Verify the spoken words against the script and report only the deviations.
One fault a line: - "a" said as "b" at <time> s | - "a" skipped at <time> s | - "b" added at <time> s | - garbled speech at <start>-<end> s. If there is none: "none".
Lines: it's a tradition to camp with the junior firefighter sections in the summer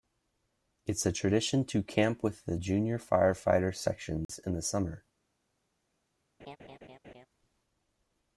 none